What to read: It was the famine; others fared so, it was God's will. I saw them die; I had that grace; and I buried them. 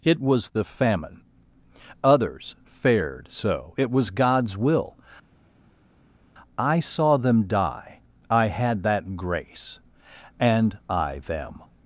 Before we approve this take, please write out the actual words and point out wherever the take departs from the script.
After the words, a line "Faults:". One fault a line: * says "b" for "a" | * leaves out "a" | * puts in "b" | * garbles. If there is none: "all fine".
It was the famine; others fared so, it was God's will. I saw them die; I had that grace; and I them.
Faults:
* leaves out "buried"